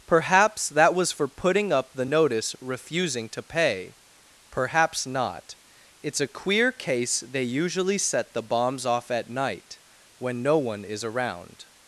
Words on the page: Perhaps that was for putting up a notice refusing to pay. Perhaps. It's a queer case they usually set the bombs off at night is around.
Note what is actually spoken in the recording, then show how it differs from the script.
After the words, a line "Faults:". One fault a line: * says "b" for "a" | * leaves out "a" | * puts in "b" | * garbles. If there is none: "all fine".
Perhaps that was for putting up the notice refusing to pay. Perhaps not. It's a queer case they usually set the bombs off at night when no one is around.
Faults:
* says "the" for "a"
* puts in "not"
* puts in "when no one"